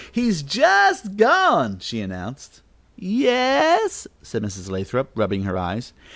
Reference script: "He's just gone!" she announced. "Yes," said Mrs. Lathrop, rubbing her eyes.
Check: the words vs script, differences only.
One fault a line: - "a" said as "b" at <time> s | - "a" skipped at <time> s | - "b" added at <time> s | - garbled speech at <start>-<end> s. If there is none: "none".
none